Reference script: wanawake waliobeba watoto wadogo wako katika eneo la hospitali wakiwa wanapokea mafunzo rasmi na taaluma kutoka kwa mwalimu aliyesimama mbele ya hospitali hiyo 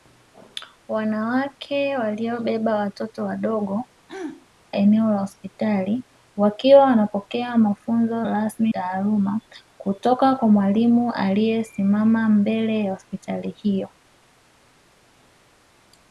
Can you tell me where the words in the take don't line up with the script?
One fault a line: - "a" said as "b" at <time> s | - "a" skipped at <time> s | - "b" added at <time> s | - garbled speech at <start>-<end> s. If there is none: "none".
- "wako katika" skipped at 3.9 s
- "na" skipped at 8.7 s